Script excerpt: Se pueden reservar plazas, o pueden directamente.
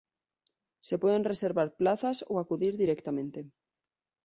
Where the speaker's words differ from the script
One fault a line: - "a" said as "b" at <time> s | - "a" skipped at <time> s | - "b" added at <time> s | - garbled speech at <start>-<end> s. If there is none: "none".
- "pueden" said as "acudir" at 2.4 s